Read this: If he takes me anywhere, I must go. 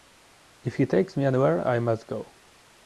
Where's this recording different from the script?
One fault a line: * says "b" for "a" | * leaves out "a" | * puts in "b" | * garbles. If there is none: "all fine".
all fine